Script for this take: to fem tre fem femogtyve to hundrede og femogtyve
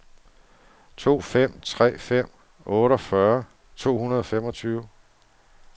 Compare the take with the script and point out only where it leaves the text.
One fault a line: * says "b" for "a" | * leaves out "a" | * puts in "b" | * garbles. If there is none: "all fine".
* says "otteogfyrre" for "femogtyve"